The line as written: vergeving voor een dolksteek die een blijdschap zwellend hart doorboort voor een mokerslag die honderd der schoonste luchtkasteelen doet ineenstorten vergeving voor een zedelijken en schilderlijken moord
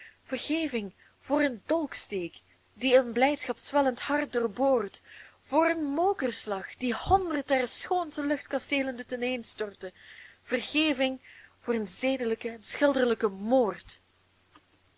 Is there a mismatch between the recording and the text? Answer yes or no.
no